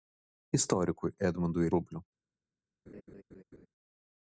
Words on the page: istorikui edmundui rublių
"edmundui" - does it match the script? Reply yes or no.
yes